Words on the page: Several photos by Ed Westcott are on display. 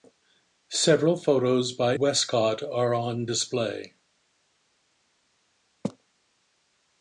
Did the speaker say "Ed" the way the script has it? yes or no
no